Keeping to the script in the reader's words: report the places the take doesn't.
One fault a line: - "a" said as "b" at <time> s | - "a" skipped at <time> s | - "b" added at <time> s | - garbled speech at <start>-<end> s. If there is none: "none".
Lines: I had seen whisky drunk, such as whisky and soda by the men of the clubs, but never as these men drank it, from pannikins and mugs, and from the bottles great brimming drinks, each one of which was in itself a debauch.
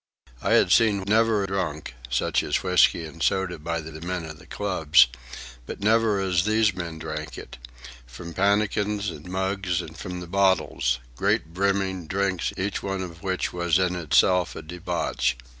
- "whisky" said as "never" at 1.1 s
- "the" added at 3.9 s